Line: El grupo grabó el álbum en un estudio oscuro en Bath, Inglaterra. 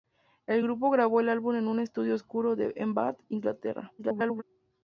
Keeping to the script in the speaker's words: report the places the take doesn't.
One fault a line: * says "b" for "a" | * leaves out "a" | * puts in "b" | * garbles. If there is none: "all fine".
* garbles